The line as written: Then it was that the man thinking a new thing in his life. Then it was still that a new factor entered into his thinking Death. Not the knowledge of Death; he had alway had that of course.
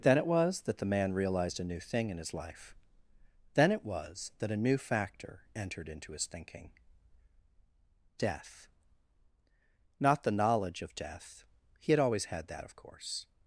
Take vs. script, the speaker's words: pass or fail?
fail